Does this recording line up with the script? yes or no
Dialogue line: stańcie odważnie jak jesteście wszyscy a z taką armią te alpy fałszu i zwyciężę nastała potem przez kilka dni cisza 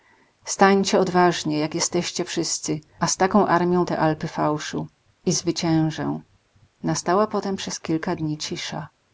yes